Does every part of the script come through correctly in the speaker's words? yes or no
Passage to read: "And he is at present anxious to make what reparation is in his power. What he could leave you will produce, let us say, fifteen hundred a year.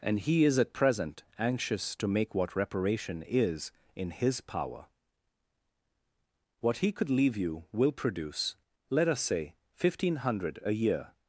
yes